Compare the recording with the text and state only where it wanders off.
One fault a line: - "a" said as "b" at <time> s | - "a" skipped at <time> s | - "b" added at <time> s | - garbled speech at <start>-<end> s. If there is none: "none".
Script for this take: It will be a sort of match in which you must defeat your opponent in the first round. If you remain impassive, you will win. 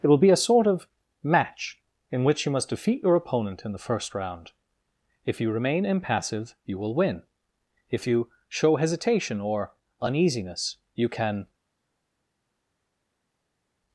- "If you show hesitation or uneasiness you can" added at 7.9 s